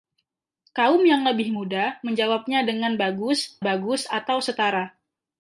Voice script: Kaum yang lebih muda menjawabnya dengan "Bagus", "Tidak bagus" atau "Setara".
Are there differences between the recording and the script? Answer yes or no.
yes